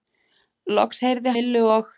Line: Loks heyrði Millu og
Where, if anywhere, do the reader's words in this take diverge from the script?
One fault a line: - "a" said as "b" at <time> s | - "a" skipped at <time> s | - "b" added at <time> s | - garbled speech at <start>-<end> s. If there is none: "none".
none